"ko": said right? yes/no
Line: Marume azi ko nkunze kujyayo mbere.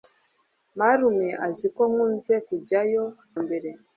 yes